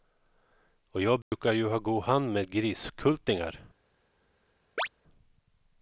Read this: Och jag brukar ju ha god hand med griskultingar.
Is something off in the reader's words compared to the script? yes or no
no